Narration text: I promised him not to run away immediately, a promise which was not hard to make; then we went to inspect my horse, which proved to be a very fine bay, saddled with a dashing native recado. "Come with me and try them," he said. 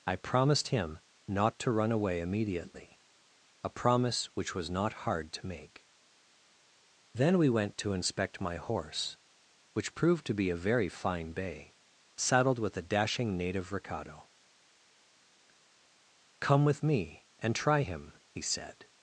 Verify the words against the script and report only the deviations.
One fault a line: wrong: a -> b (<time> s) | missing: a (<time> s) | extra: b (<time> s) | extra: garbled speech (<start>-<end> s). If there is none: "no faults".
wrong: them -> him (17.8 s)